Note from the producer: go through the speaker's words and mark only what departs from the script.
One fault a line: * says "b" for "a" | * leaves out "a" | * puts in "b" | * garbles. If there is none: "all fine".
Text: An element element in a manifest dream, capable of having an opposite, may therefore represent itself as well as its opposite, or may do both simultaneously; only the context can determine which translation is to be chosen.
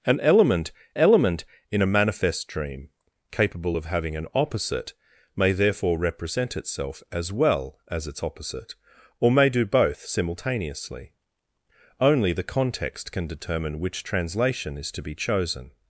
all fine